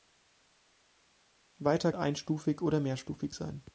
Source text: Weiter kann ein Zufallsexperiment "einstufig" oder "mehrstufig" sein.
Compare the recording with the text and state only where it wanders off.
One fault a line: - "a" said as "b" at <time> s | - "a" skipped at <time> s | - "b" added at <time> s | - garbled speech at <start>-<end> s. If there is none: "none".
- "kann ein Zufallsexperiment" skipped at 1.9 s